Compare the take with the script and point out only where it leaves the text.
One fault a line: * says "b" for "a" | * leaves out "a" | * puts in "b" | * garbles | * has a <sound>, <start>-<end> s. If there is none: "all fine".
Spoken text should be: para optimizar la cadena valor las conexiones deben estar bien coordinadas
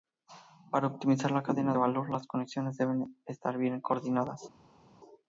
all fine